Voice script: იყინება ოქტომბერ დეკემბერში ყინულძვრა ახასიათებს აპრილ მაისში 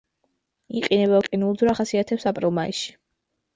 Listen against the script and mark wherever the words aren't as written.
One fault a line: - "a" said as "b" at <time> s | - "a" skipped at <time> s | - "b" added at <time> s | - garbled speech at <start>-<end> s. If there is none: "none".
- "ოქტომბერ დეკემბერში" skipped at 1.2 s